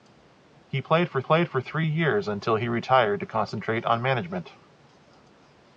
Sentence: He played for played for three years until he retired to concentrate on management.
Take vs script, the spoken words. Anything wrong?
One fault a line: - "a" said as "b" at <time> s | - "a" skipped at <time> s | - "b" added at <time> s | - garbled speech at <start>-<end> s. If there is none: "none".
none